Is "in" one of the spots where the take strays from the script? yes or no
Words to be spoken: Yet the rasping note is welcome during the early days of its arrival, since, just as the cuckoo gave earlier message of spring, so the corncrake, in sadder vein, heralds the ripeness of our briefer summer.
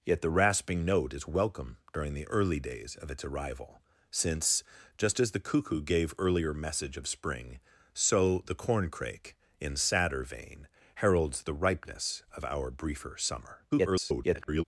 no